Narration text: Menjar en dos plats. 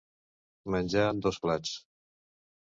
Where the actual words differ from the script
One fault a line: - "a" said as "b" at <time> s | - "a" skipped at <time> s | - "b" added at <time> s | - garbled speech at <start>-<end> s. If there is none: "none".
none